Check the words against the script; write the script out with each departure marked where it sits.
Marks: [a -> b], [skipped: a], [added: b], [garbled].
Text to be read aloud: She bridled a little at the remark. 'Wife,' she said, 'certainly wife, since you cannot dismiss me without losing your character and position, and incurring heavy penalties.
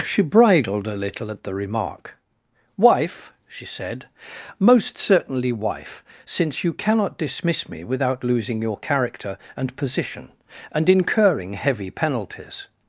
She bridled a little at the remark. 'Wife,' she said, [added: most] 'certainly wife, since you cannot dismiss me without losing your character and position, and incurring heavy penalties.